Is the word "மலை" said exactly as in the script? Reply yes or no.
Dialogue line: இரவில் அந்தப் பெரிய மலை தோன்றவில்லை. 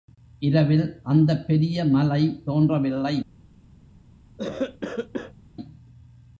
yes